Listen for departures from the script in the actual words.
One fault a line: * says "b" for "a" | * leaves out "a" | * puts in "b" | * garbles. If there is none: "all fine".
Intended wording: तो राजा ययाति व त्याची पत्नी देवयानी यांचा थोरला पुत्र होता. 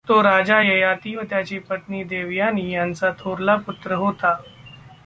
all fine